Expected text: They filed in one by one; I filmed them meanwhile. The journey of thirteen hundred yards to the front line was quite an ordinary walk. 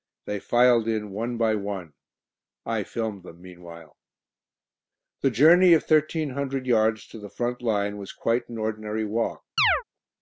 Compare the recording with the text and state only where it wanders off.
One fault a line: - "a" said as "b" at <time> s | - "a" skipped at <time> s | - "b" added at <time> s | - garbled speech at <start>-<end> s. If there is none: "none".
none